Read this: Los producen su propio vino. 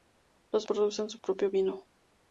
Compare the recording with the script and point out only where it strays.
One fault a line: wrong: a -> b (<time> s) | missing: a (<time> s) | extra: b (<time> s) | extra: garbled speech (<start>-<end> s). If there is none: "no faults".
no faults